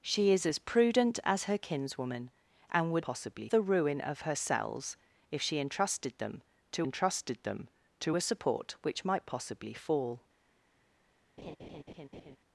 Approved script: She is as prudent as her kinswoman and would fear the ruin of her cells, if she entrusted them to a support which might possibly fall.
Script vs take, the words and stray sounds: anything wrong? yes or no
yes